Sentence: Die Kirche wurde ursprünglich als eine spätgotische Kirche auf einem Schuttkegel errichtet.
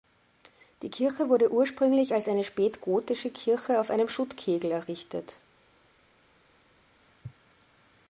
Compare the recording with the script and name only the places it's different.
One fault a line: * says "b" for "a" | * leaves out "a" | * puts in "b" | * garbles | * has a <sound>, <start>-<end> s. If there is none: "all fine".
all fine